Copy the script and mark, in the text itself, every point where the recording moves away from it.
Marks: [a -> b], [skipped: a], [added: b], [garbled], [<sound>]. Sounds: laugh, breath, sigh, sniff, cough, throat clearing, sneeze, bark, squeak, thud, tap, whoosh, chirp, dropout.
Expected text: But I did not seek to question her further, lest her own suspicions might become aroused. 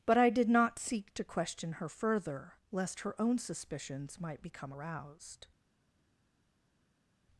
But I did not seek to question her further, lest her own suspicions might become aroused.